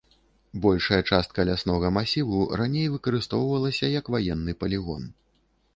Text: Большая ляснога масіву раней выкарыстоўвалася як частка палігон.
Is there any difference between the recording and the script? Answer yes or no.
yes